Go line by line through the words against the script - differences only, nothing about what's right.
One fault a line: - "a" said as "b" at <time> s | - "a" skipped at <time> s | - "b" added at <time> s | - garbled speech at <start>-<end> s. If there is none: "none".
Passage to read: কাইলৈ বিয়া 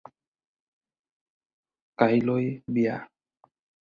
none